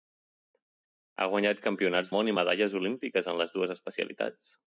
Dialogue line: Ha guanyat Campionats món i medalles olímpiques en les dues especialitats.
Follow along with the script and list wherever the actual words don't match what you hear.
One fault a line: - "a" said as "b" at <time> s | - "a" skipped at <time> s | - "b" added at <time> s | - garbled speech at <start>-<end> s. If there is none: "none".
none